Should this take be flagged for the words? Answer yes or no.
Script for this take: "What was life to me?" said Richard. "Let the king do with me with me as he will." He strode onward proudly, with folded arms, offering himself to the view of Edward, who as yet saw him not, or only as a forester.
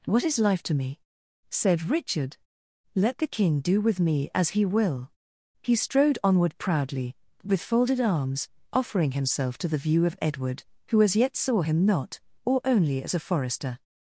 yes